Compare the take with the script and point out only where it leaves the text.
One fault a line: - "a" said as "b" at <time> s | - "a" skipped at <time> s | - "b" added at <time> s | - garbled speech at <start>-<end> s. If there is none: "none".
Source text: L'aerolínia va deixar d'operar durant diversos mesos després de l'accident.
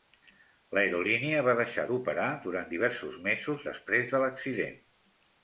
none